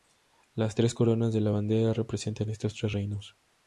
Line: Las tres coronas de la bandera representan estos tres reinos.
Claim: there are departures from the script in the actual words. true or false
false